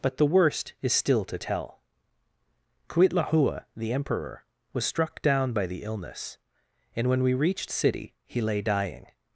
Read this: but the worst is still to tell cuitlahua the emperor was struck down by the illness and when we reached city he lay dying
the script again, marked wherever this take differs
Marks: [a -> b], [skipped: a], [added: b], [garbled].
but the worst is still to tell cuitlahua the emperor was struck down by the illness and when we reached city he lay dying